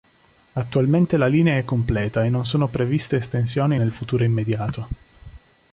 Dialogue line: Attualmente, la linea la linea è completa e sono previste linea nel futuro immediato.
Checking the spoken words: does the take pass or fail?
fail